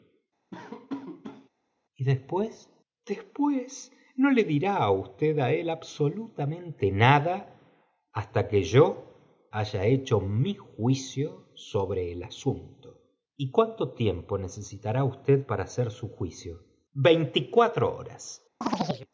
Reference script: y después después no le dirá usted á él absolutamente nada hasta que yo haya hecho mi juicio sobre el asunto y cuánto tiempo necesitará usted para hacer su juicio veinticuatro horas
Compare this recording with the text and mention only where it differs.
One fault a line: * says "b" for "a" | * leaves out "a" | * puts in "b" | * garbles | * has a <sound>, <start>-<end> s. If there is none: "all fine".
* has a laugh, 0.5-1.5 s
* has a chirp, 18.6-19.1 s